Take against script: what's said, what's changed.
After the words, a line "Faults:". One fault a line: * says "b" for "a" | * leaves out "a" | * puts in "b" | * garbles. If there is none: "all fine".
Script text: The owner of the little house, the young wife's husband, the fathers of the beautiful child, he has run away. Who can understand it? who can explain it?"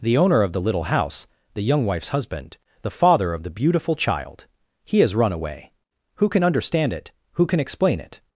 The owner of the little house, the young wife's husband, the father of the beautiful child, he has run away. Who can understand it? who can explain it?"
Faults:
* says "father" for "fathers"